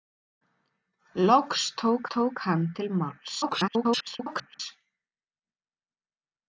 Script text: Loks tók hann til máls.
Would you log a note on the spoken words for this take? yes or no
yes